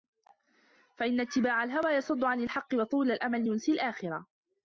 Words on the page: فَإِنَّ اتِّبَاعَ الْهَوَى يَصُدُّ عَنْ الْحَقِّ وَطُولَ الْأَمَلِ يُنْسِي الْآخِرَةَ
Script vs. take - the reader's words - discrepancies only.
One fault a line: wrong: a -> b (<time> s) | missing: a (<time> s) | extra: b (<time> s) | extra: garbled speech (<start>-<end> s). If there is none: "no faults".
no faults